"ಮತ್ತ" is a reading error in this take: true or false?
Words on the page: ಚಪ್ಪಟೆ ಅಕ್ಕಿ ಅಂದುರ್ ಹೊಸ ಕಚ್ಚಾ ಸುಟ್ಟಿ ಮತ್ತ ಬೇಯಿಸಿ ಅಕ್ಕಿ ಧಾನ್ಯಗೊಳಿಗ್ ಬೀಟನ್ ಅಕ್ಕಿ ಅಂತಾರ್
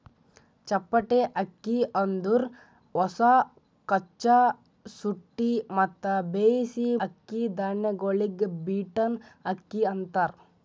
false